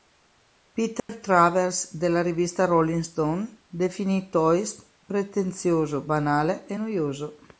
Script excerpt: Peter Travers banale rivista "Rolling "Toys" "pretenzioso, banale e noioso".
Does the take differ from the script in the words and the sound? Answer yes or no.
yes